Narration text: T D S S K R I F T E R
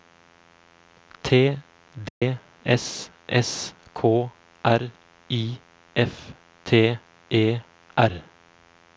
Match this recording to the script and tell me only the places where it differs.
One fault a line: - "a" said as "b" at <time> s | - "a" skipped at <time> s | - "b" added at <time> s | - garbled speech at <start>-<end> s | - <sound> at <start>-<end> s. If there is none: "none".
- dropout at 2.1-2.2 s